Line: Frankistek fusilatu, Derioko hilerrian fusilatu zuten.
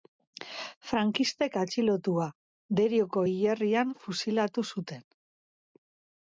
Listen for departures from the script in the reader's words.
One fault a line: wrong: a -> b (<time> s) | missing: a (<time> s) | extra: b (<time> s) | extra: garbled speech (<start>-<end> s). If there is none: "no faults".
wrong: fusilatu -> atxilotua (1.6 s)